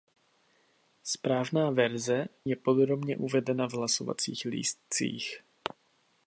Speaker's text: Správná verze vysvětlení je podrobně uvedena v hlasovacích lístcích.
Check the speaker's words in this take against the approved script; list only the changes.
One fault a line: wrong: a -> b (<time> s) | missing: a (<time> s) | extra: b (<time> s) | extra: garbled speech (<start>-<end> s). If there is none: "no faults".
missing: vysvětlení (2.2 s)